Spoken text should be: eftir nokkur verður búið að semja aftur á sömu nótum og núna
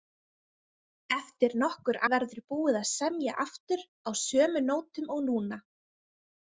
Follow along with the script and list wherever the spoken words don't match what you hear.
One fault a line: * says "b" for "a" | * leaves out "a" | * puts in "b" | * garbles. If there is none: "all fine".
all fine